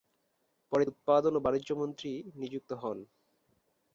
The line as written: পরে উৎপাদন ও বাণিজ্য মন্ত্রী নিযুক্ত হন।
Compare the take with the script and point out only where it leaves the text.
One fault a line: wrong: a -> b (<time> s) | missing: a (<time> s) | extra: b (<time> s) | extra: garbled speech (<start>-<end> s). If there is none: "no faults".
no faults